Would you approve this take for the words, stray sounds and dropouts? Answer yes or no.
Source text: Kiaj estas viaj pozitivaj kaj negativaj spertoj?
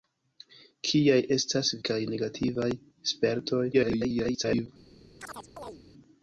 no